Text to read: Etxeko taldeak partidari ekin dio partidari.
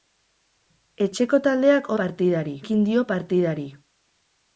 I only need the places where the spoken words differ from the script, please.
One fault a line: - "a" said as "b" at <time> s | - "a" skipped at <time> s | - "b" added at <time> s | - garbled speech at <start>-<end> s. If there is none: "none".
none